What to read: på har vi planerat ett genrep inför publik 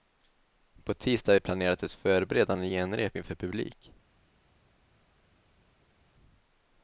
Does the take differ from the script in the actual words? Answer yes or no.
yes